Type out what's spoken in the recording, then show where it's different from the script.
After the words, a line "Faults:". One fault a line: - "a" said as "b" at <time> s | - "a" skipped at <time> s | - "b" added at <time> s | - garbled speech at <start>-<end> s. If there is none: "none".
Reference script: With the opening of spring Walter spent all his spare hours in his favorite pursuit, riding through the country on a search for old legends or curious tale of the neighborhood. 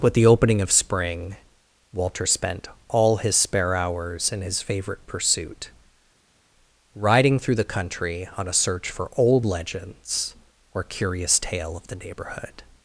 With the opening of spring Walter spent all his spare hours in his favorite pursuit, riding through the country on a search for old legends or curious tale of the neighborhood.
Faults:
none